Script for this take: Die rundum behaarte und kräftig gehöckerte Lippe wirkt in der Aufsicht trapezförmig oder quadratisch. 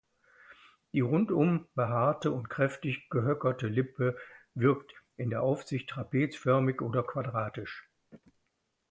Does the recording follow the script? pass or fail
pass